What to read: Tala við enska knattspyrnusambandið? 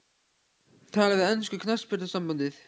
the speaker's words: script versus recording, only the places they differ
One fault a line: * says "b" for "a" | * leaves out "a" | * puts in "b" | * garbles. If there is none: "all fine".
all fine